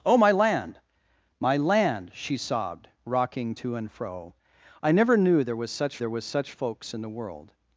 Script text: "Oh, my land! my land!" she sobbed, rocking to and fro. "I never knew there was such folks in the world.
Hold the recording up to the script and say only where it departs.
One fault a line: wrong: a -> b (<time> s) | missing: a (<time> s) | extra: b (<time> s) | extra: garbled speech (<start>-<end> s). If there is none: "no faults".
extra: there was such (6.0 s)